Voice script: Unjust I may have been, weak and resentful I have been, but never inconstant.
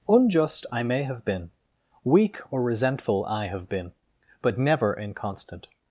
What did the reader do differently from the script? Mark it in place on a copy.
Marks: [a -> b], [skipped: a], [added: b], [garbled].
Unjust I may have been, weak [and -> or] resentful I have been, but never inconstant.